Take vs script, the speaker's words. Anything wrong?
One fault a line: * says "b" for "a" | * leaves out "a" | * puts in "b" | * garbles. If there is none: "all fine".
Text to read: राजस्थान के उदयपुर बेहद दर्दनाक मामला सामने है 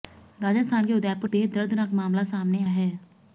all fine